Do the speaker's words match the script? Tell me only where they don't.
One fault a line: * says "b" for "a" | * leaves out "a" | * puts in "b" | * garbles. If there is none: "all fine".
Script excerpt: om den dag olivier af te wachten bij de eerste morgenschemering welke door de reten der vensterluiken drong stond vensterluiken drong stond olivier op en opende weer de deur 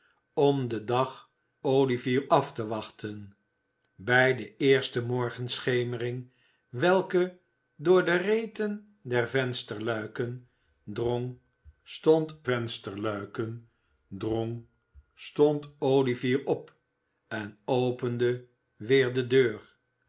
all fine